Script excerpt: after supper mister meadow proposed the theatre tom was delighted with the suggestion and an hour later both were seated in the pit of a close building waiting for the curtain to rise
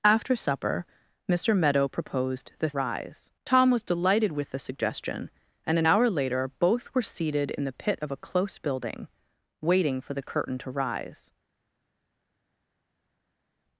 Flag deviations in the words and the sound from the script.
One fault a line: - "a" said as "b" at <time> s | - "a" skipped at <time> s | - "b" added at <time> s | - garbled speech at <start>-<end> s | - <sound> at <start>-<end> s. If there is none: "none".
- "theatre" said as "rise" at 2.7 s